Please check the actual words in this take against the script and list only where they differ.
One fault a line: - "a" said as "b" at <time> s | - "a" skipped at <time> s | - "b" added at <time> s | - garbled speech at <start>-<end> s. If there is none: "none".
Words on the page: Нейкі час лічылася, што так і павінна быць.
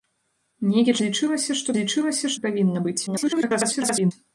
- "час" skipped at 0.9 s
- "так" said as "лічылася" at 1.8 s
- garbled speech at 3.1-4.1 s